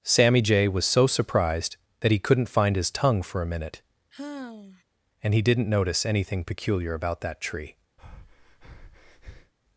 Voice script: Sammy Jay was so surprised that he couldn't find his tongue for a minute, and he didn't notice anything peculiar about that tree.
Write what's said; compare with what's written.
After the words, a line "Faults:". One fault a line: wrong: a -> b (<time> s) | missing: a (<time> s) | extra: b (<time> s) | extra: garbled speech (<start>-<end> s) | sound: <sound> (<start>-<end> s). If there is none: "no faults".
Sammy Jay was so surprised that he couldn't find his tongue for a minute, and he didn't notice anything peculiar about that tree.
Faults:
sound: sigh (4.1-4.8 s)
sound: breath (8.0-9.5 s)